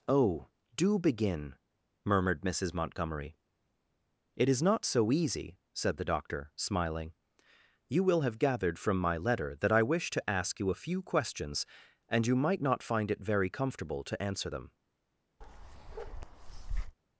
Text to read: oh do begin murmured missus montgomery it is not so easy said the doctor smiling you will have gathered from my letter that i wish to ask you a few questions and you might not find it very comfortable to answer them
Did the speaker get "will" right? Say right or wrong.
right